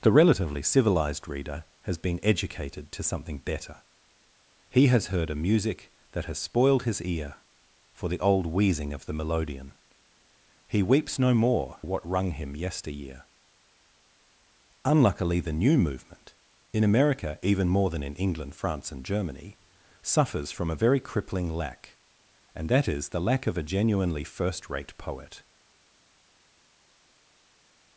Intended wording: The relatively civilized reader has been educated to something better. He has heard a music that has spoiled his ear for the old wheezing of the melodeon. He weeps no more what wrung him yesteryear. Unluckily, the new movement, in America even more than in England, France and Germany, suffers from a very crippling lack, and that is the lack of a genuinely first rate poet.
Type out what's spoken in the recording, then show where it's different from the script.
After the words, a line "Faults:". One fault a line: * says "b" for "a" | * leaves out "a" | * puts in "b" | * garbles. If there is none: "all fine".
The relatively civilized reader has been educated to something better. He has heard a music that has spoiled his ear for the old wheezing of the melodeon. He weeps no more what wrung him yesteryear. Unluckily, the new movement, in America even more than in England, France and Germany, suffers from a very crippling lack, and that is the lack of a genuinely first rate poet.
Faults:
all fine